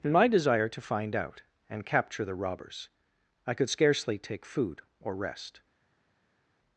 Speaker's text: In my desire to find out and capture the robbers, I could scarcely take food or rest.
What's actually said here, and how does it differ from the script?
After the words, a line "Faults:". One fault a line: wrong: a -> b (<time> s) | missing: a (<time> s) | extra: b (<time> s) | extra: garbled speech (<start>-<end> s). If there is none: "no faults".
In my desire to find out and capture the robbers, I could scarcely take food or rest.
Faults:
no faults